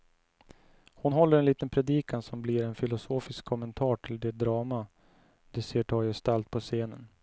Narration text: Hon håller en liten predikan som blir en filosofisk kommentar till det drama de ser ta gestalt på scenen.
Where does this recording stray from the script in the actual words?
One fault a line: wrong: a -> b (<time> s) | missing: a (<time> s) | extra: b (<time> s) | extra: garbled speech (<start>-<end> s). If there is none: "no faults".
no faults